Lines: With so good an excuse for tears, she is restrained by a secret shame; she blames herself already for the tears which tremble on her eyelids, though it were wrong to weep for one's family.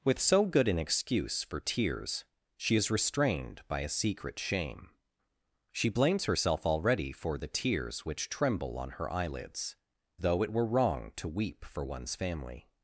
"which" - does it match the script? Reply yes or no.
yes